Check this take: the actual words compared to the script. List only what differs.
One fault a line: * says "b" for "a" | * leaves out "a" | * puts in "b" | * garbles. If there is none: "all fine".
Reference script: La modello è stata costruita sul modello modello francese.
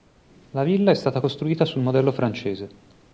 * says "villa" for "modello"
* leaves out "modello"